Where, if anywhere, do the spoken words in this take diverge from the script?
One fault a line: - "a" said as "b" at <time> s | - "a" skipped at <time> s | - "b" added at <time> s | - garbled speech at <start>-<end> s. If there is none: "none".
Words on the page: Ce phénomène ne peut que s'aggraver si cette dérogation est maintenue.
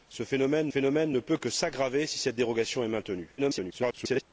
- "phénomène" added at 0.7 s
- garbled speech at 3.4-4.2 s